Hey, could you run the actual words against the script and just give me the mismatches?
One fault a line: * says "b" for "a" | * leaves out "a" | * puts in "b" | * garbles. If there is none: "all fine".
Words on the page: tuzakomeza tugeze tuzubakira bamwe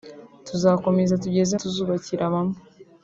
all fine